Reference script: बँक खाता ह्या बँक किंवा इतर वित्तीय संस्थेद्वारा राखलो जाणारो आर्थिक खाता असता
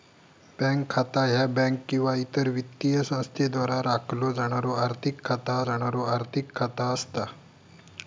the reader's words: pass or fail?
fail